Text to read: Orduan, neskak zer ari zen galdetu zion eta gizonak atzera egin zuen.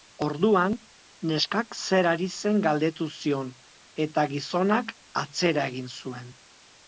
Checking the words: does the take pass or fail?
pass